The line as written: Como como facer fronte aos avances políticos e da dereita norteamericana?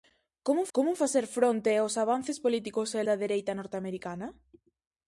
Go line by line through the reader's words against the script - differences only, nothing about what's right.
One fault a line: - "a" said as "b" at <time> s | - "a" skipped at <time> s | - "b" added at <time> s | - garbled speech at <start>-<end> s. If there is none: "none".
none